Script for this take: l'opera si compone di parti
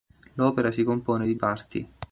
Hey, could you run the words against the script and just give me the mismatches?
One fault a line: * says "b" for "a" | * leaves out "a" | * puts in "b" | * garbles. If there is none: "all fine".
all fine